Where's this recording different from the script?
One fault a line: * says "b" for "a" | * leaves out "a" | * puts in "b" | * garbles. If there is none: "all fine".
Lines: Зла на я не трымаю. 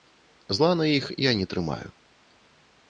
* puts in "іх"